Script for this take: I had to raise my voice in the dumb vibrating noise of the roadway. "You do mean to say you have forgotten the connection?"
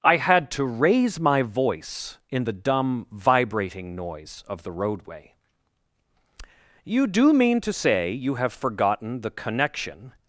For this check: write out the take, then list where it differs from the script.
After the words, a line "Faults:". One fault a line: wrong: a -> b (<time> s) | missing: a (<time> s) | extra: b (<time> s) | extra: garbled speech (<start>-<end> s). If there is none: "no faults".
I had to raise my voice in the dumb vibrating noise of the roadway. "You do mean to say you have forgotten the connection?"
Faults:
no faults